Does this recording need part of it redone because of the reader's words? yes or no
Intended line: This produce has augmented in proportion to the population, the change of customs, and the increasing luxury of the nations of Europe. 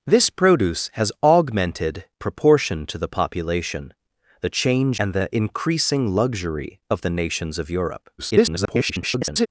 yes